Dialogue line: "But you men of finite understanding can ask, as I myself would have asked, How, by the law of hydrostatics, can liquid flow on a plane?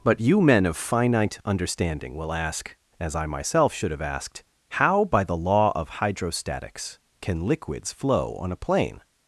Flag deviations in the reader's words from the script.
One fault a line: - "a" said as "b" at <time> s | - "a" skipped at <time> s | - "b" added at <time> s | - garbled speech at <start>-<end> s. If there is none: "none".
- "can" said as "will" at 2.1 s
- "would" said as "should" at 3.7 s
- "liquid" said as "liquids" at 7.5 s